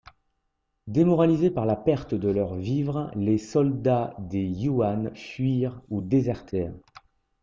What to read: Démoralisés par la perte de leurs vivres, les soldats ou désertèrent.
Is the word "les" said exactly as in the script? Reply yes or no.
yes